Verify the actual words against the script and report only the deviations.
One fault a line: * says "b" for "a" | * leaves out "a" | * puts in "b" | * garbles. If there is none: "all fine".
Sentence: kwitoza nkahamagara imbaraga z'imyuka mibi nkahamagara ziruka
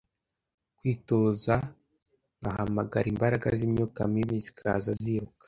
* says "zikaza" for "nkahamagara"